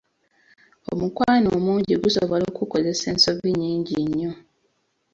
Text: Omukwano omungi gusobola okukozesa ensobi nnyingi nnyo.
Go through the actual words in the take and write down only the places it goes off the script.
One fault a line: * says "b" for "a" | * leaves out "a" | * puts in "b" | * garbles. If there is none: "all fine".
all fine